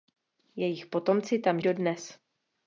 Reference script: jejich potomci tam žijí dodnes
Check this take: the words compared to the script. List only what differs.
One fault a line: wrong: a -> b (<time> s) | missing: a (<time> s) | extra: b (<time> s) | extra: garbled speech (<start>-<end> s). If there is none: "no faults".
missing: žijí (1.6 s)